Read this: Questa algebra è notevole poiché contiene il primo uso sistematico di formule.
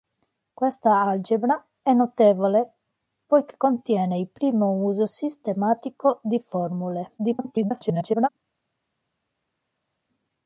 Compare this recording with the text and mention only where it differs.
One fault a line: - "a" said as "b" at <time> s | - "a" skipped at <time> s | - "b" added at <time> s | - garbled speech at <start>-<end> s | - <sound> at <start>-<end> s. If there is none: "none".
- garbled speech at 7.2-8.3 s